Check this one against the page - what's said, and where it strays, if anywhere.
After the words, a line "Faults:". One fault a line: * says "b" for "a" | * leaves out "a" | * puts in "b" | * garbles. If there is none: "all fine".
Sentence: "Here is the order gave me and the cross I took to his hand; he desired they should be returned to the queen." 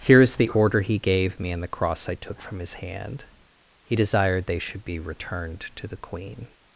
"Here is the order he gave me and the cross I took from his hand; he desired they should be returned to the queen."
Faults:
* puts in "he"
* says "from" for "to"